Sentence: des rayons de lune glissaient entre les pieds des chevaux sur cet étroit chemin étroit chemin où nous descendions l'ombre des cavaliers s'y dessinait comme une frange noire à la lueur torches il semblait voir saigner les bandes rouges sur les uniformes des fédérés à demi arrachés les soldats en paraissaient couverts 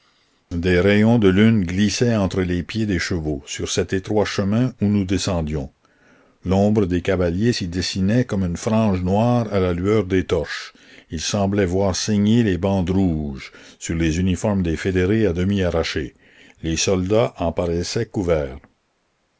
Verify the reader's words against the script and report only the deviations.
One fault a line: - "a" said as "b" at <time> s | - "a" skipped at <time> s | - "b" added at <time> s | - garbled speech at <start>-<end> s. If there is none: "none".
- "étroit chemin" skipped at 4.7 s
- "des" added at 10.0 s